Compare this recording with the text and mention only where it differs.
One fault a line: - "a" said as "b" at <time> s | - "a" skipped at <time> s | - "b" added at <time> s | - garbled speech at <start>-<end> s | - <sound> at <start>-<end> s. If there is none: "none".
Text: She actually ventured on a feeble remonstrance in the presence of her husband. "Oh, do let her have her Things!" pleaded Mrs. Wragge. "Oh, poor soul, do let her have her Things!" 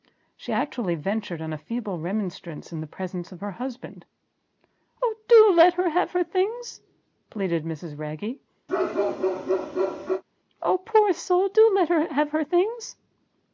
- bark at 8.7-10.2 s